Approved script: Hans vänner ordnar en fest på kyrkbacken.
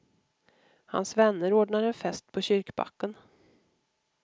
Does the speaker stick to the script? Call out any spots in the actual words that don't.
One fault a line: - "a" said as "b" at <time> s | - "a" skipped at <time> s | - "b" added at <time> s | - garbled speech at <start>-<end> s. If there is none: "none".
none